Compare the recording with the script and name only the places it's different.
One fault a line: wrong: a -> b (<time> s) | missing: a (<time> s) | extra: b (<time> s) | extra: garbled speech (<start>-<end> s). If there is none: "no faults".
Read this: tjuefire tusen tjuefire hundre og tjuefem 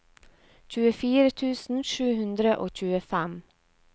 wrong: tjuefire -> sju (1.9 s)